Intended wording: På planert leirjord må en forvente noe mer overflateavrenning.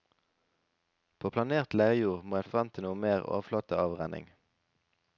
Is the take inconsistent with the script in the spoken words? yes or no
no